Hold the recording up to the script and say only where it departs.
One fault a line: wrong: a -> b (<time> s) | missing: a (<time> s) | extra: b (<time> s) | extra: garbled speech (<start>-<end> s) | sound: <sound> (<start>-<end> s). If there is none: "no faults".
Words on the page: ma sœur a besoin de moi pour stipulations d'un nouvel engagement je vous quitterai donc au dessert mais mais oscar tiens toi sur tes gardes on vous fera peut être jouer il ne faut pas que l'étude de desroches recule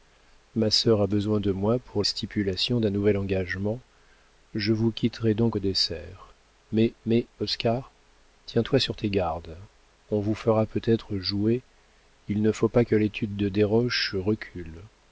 no faults